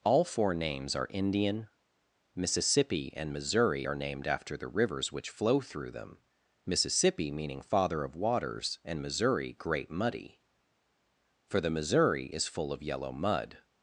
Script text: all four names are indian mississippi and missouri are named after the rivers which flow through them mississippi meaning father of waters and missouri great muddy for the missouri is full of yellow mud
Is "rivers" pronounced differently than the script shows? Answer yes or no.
no